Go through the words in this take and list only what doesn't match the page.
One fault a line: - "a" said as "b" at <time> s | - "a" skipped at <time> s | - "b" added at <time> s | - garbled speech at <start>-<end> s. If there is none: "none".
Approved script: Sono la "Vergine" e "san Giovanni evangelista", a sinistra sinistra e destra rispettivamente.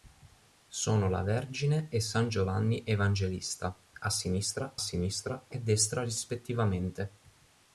none